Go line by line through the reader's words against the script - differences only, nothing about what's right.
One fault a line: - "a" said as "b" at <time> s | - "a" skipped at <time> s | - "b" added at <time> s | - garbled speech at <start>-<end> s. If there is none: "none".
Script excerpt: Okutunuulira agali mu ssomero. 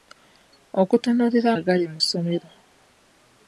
none